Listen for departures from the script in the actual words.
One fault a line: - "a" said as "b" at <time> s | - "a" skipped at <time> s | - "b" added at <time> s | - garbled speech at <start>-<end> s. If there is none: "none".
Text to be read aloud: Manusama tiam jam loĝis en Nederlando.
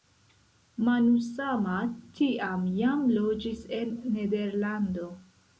none